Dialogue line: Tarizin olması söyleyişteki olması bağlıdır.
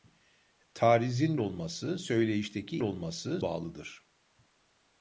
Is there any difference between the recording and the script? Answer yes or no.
no